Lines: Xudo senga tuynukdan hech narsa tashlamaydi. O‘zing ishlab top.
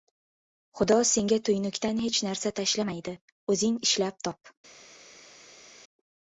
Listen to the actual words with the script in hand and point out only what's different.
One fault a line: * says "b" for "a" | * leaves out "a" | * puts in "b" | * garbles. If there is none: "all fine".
all fine